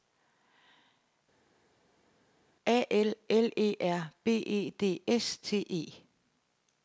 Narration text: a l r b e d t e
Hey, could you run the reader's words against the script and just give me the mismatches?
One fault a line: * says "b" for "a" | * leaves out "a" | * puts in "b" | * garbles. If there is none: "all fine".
* puts in "l e"
* puts in "s"